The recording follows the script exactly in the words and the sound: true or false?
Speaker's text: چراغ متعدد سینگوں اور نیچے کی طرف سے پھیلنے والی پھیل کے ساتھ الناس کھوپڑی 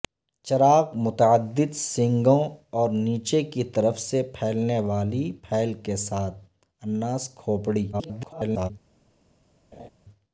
false